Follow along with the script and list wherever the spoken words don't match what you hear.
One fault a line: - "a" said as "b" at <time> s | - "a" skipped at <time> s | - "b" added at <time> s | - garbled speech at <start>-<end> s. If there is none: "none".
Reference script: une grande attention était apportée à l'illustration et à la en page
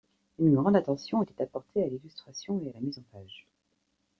- "mise" added at 2.8 s